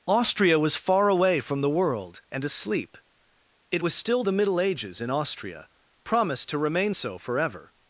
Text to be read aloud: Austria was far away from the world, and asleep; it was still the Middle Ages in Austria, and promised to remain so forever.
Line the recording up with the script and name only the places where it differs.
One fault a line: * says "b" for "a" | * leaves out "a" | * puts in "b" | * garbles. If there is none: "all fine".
* leaves out "and"